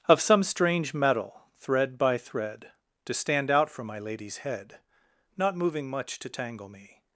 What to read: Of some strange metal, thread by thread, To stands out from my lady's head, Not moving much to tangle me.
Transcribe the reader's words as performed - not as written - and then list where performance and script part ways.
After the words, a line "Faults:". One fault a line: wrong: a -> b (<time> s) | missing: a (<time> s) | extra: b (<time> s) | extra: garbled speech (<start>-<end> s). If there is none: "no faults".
Of some strange metal, thread by thread, To stand out from my lady's head, Not moving much to tangle me.
Faults:
wrong: stands -> stand (3.1 s)